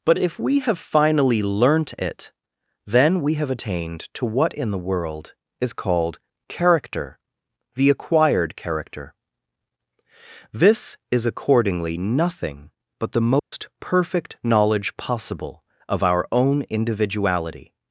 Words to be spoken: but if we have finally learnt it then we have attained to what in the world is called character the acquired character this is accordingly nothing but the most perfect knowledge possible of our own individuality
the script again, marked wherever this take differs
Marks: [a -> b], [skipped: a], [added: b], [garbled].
but if we have finally learnt it then we have attained to what in the world is called character the acquired character this is accordingly nothing but the most perfect knowledge possible of our own individuality